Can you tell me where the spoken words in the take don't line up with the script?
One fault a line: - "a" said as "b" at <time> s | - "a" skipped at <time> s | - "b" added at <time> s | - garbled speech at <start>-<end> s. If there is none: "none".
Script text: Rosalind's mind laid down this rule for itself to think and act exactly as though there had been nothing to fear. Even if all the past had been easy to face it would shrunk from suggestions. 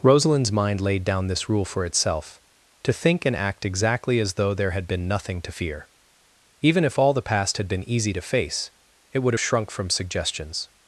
none